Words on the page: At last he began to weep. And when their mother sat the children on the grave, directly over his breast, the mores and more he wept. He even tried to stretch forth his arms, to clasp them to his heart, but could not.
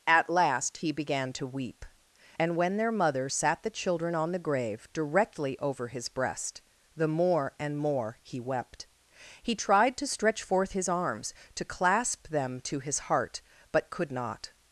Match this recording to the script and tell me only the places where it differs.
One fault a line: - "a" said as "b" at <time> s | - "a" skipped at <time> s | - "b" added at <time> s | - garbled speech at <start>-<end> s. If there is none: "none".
- "mores" said as "more" at 7.1 s
- "even" skipped at 9.6 s